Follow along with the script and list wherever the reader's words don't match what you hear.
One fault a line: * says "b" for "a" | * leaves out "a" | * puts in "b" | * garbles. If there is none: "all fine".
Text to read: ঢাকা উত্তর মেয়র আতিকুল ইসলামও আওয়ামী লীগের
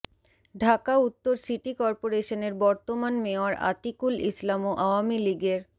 * puts in "সিটি করপোরেশনের বর্তমান"